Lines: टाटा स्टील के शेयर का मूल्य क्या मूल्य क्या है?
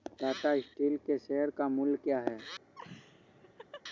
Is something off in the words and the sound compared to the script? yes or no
yes